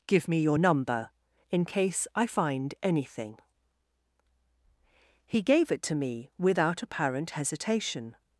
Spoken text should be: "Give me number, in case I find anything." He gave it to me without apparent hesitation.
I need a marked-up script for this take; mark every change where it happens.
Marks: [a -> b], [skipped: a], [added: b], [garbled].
"Give me [added: your] number, in case I find anything." He gave it to me without apparent hesitation.